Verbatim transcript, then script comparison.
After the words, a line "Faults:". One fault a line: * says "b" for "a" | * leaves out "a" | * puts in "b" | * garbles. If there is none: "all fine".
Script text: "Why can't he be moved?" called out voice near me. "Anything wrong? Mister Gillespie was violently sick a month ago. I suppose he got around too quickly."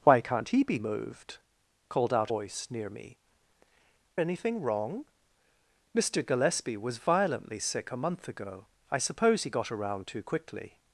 "Why can't he be moved?" called out voice near me. "Anything wrong? Mister Gillespie was violently sick a month ago. I suppose he got around too quickly."
Faults:
all fine